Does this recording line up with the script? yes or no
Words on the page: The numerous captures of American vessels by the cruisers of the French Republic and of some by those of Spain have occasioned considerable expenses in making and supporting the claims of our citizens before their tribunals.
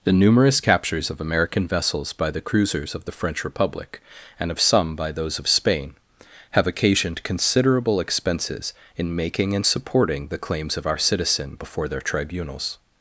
no